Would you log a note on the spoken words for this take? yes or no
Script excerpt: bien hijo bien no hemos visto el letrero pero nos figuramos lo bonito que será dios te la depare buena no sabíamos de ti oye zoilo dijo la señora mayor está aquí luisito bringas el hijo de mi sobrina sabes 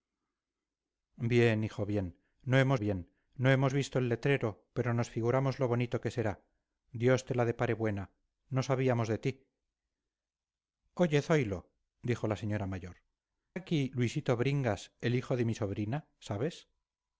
yes